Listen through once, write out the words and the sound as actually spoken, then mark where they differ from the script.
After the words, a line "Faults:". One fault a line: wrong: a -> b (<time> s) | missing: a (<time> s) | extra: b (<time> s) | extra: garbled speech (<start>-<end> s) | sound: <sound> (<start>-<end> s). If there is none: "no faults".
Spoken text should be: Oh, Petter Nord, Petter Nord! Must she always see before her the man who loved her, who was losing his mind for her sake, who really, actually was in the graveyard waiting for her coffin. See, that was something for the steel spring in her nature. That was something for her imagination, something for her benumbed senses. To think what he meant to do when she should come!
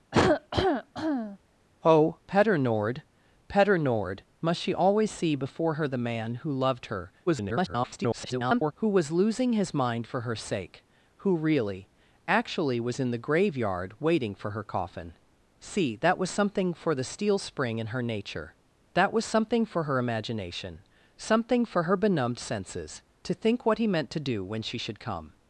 Oh, Petter Nord, Petter Nord! Must she always see before her the man who loved her, [garbled] who was losing his mind for her sake, who really, actually was in the graveyard waiting for her coffin. See, that was something for the steel spring in her nature. That was something for her imagination, something for her benumbed senses. To think what he meant to do when she should come!
Faults:
sound: cough (0.1-1.4 s)
extra: garbled speech (7.3-8.7 s)